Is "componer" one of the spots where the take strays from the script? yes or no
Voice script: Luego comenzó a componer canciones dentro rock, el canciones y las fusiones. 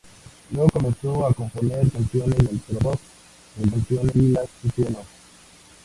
no